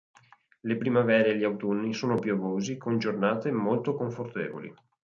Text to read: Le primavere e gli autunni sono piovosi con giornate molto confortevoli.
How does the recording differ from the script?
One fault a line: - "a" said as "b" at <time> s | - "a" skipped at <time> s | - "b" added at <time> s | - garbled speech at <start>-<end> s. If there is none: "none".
none